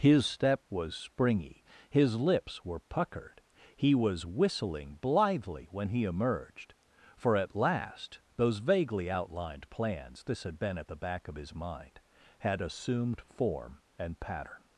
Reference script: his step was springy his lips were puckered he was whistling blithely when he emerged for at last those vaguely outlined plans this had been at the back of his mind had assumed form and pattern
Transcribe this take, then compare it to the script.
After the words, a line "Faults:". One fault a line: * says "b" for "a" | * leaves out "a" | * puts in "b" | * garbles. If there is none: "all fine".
his step was springy his lips were puckered he was whistling blithely when he emerged for at last those vaguely outlined plans this had been at the back of his mind had assumed form and pattern
Faults:
all fine